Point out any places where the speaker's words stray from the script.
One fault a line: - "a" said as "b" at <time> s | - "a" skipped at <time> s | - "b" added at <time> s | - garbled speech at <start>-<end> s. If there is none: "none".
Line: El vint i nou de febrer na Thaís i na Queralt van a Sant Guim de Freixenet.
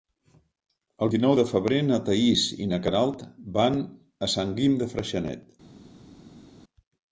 - "vint" skipped at 1.1 s